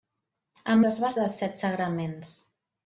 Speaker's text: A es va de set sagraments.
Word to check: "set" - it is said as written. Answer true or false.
true